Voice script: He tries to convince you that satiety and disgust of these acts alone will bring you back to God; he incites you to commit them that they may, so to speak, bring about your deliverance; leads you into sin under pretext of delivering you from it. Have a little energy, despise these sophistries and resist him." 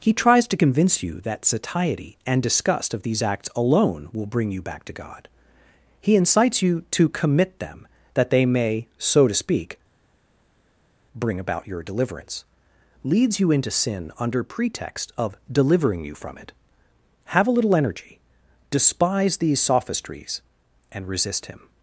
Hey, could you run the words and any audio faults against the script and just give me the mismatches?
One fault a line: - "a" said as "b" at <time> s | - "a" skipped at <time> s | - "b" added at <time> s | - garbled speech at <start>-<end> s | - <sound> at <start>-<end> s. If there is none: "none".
none